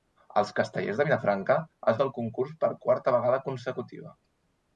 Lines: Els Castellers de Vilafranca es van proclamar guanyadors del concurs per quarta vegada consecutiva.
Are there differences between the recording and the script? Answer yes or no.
yes